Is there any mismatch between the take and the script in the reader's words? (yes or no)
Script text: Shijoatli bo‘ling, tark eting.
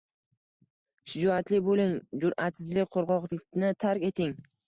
yes